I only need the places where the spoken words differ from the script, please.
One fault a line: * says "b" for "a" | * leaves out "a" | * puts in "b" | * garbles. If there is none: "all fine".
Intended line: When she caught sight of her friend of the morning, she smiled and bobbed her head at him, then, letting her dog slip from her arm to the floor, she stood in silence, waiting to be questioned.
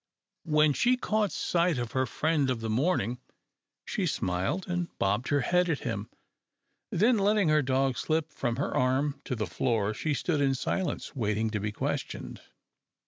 all fine